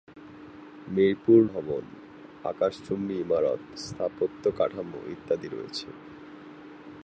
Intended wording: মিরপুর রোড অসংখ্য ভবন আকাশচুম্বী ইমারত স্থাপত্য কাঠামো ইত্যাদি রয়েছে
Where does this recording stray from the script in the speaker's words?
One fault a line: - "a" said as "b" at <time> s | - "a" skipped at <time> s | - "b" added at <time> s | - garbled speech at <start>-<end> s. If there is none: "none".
- "রোড অসংখ্য" skipped at 1.4 s